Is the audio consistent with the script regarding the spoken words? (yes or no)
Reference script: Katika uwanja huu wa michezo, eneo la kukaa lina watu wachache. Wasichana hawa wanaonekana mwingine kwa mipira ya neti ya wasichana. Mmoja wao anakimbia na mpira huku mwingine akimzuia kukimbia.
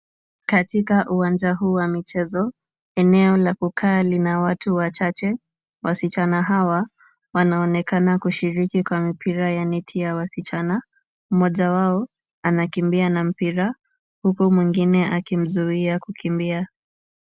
no